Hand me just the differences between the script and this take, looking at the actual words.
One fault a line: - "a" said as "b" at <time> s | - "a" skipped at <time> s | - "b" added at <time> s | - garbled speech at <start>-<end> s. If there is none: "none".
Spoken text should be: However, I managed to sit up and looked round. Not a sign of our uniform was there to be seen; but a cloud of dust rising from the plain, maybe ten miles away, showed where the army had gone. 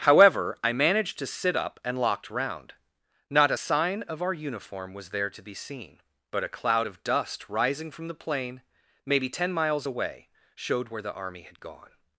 - "looked" said as "locked" at 1.9 s